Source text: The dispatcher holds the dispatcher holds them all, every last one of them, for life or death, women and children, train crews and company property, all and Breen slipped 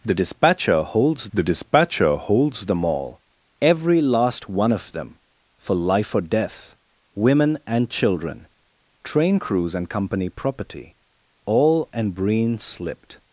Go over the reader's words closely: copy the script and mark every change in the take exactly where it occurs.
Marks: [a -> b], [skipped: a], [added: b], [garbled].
The dispatcher holds the dispatcher holds them all, every last one of them, for life or death, women and children, train crews and company property, all and Breen slipped